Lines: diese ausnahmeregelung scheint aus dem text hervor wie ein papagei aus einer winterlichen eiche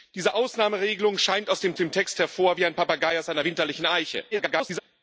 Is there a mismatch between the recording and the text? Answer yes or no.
yes